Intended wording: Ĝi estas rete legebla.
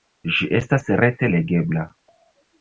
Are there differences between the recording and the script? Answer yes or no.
no